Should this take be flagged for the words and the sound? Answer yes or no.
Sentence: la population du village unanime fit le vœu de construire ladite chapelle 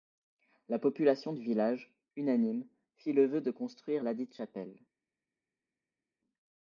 no